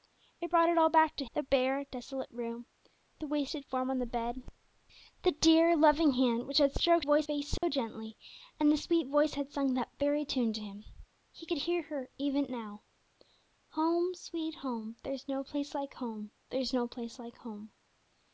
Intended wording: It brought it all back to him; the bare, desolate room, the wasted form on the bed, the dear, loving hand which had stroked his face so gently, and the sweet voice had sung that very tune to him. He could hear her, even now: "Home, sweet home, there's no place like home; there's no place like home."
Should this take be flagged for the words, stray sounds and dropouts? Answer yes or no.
yes